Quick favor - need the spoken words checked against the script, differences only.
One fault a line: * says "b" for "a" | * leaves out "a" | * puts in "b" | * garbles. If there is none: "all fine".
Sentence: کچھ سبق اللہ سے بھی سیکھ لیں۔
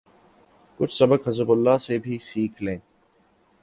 * puts in "حزب"